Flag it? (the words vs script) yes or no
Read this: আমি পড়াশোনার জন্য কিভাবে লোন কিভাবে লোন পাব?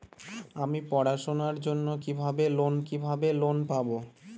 no